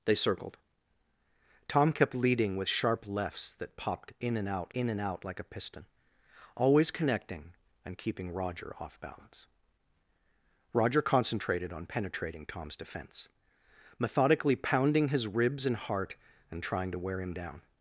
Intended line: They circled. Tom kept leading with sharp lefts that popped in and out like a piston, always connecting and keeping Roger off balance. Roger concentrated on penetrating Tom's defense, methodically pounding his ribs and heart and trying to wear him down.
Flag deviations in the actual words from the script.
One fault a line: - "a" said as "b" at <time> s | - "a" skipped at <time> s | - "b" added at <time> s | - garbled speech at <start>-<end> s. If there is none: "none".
- "in and out" added at 4.7 s